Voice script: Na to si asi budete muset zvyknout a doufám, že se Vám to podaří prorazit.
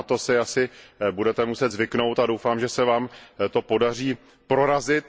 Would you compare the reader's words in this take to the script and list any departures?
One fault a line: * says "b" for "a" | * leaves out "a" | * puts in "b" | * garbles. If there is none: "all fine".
all fine